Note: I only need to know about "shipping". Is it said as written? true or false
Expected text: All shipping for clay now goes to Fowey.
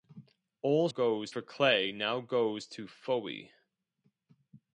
false